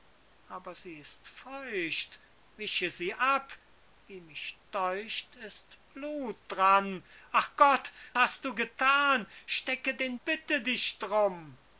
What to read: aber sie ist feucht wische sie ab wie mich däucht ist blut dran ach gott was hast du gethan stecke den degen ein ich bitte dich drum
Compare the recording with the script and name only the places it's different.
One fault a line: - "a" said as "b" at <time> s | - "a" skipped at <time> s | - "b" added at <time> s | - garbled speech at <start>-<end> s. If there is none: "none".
- "was" skipped at 7.9 s
- "degen ein ich" skipped at 10.2 s